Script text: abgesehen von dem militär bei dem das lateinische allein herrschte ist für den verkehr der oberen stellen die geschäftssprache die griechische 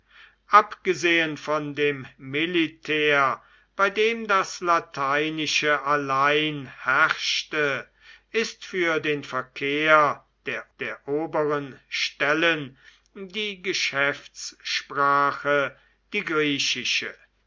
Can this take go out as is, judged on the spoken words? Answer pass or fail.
fail